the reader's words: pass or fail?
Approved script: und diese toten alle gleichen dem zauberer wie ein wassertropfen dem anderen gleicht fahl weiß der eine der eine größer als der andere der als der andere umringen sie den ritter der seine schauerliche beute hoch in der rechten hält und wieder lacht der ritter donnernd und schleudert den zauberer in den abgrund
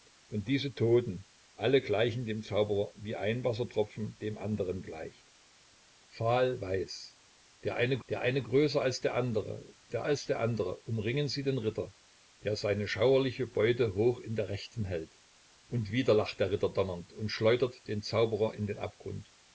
pass